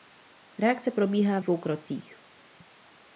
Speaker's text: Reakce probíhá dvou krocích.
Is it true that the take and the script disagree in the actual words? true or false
false